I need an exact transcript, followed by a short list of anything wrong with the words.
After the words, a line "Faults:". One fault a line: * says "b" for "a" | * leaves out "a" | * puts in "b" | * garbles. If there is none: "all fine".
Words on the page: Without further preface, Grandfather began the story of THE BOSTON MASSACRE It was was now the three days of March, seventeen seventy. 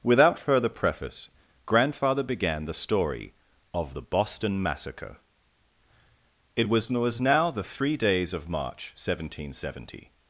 Without further preface, Grandfather began the story of THE BOSTON MASSACRE It was was now the three days of March, seventeen seventy.
Faults:
all fine